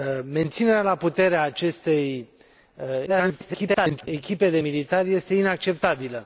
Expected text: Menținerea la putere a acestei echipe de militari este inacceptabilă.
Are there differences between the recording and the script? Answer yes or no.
yes